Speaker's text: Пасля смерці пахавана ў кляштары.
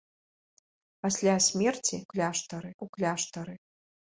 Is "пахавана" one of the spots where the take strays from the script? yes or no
yes